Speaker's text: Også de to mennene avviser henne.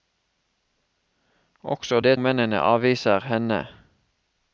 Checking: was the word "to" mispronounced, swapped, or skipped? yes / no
yes